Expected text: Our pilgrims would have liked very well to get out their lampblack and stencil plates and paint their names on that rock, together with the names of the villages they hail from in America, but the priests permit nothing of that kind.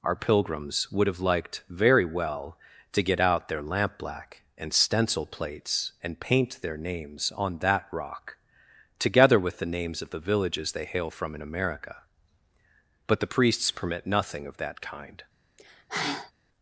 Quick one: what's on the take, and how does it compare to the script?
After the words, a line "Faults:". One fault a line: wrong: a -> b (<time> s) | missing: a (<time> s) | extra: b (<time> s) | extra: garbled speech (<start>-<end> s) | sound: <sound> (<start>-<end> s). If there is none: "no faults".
Our pilgrims would have liked very well to get out their lampblack and stencil plates and paint their names on that rock, together with the names of the villages they hail from in America, but the priests permit nothing of that kind.
Faults:
sound: sigh (15.6-16.3 s)